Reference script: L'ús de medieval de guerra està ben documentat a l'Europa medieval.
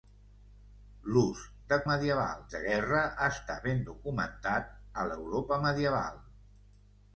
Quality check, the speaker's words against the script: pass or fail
pass